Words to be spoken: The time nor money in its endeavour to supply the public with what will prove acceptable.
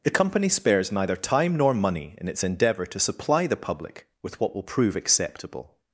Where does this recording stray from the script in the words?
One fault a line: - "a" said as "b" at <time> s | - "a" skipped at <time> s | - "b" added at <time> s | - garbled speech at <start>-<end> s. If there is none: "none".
- "company spares neither" added at 0.1 s